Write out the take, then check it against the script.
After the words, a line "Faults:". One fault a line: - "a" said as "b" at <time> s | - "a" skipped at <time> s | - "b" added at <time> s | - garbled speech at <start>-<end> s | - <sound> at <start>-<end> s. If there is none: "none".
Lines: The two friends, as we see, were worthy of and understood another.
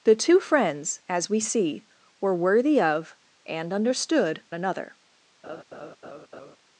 The two friends, as we see, were worthy of and understood another.
Faults:
- laugh at 5.4-6.6 s